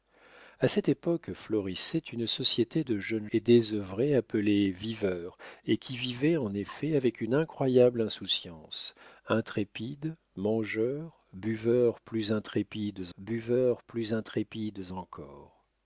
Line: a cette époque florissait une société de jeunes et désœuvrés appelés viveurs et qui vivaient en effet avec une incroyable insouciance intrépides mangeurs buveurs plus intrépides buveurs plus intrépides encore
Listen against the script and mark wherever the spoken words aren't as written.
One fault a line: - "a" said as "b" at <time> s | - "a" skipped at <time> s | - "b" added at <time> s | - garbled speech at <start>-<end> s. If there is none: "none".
none